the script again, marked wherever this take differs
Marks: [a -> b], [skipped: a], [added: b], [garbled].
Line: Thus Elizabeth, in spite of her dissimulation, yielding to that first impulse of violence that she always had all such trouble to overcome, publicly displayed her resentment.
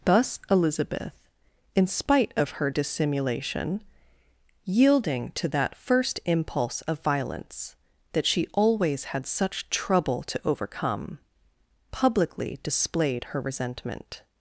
Thus Elizabeth, in spite of her dissimulation, yielding to that first impulse of violence that she always had [skipped: all] such trouble to overcome, publicly displayed her resentment.